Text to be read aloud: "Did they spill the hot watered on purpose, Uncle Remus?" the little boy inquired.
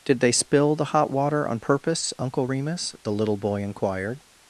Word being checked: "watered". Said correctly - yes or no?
no